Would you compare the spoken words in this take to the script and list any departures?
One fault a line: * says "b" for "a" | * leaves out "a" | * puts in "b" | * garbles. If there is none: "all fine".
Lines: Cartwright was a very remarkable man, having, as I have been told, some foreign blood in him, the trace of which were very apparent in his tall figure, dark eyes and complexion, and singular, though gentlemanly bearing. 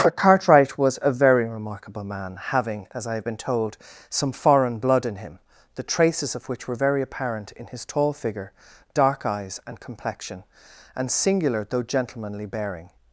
* says "traces" for "trace"